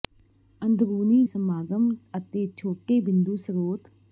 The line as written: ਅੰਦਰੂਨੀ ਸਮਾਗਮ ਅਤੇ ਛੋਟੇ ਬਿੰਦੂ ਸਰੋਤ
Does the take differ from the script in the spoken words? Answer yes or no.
no